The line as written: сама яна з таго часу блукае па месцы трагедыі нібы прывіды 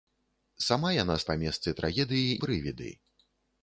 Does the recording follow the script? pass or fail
fail